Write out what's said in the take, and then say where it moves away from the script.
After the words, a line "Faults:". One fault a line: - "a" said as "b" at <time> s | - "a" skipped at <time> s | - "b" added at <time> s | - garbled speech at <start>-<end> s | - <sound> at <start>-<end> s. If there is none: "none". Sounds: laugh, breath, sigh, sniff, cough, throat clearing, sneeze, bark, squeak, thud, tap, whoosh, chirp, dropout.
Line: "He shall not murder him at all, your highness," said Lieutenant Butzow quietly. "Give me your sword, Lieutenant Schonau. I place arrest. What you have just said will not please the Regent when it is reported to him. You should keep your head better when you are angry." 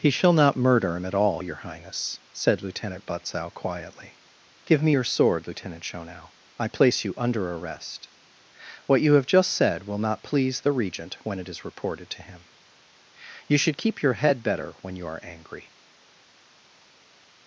"He shall not murder him at all, your highness," said Lieutenant Butzow quietly. "Give me your sword, Lieutenant Schonau. I place you under arrest. What you have just said will not please the Regent when it is reported to him. You should keep your head better when you are angry."
Faults:
- "you under" added at 7.0 s